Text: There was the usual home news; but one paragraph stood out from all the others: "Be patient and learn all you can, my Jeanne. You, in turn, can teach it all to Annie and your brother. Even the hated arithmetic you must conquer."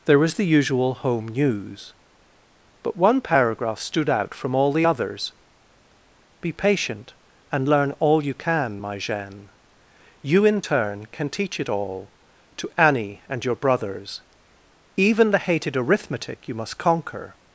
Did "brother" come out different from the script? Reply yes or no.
yes